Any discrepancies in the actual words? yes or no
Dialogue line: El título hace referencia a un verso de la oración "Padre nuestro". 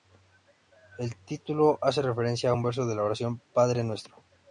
no